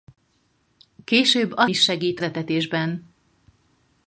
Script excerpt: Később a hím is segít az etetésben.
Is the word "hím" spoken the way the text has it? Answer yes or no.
no